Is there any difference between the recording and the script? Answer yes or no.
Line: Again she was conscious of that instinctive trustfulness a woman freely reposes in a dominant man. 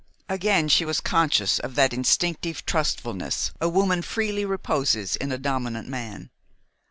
no